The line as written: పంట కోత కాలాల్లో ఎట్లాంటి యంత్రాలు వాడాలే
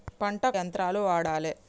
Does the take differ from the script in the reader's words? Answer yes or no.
yes